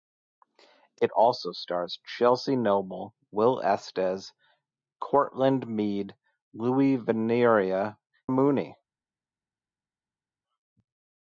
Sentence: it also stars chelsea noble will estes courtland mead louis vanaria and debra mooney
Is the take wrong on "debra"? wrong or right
wrong